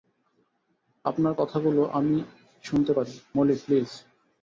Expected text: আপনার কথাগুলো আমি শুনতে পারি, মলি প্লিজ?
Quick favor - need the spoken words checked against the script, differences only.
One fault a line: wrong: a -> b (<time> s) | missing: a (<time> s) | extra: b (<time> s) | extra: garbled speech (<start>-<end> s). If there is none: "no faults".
no faults